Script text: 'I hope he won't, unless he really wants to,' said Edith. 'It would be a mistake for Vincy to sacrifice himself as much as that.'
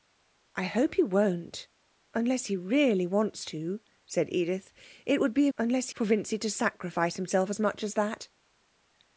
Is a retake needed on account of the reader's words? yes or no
yes